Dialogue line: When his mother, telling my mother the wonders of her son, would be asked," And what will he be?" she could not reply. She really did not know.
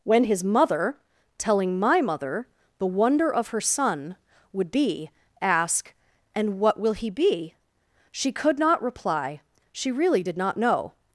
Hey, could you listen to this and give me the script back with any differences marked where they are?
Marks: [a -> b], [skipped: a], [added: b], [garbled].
When his mother, telling my mother the [wonders -> wonder] of her son, would be [asked," -> ask] And what will he be?" she could not reply. She really did not know.